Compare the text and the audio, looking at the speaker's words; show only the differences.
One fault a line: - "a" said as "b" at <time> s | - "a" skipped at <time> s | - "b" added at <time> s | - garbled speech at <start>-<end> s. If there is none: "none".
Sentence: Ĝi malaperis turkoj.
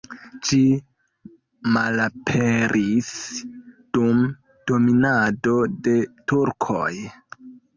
- "dum dominado de" added at 4.0 s